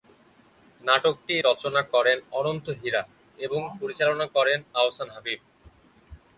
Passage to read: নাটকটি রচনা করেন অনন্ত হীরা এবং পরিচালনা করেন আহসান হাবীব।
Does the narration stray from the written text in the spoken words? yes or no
no